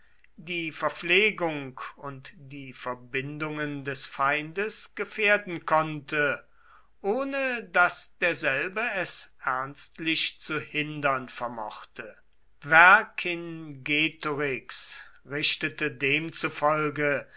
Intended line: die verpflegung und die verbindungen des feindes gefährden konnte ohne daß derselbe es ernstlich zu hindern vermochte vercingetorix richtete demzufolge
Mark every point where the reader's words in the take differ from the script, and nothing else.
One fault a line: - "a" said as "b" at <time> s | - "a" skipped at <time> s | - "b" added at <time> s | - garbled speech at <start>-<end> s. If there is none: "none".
none